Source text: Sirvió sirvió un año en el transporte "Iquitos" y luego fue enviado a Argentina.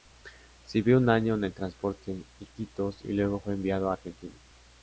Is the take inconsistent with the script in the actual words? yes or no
yes